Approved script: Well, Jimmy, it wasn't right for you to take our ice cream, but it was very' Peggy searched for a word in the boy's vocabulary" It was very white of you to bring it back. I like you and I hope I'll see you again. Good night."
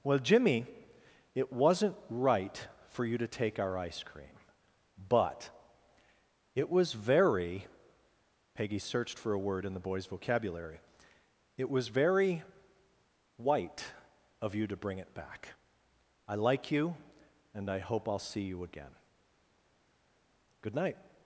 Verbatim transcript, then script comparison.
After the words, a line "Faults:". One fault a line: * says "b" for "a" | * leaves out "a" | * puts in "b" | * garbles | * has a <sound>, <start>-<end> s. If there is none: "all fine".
Well, Jimmy, it wasn't right for you to take our ice cream, but it was very' Peggy searched for a word in the boy's vocabulary" It was very white of you to bring it back. I like you and I hope I'll see you again. Good night."
Faults:
all fine